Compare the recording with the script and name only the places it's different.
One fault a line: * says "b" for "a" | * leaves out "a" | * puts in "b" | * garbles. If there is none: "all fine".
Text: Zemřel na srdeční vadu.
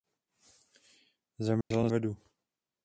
* leaves out "srdeční"